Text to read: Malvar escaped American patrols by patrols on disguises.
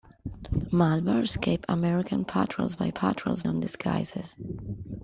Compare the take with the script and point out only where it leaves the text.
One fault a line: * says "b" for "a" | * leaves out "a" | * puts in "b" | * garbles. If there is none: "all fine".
all fine